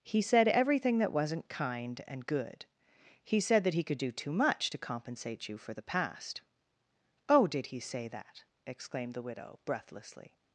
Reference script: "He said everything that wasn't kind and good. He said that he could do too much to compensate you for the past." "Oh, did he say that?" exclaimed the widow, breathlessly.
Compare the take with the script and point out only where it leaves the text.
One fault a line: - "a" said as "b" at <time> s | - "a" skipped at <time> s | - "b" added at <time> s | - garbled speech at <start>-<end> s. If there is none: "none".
none